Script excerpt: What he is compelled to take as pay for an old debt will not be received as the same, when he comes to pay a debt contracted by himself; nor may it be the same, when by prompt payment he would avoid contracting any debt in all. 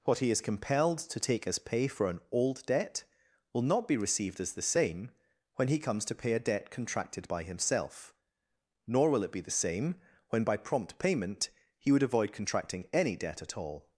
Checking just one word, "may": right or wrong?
wrong